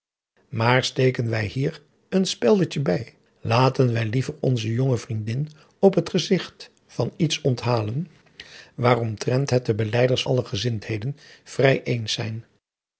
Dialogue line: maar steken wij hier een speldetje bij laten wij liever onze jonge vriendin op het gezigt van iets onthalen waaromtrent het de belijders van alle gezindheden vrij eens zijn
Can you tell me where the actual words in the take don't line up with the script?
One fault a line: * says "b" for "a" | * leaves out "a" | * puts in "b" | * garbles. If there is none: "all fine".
* leaves out "van"